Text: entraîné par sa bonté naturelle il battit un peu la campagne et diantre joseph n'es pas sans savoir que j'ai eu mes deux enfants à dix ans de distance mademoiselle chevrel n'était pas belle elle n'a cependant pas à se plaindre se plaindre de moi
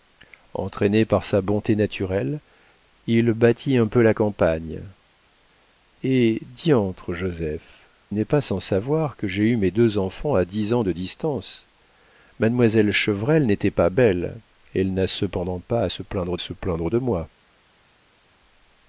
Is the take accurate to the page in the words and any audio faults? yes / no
yes